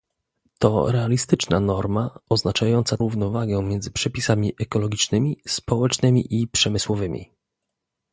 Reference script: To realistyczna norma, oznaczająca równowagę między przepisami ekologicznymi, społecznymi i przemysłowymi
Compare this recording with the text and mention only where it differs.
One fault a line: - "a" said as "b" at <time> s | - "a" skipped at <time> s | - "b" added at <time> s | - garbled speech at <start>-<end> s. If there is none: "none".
none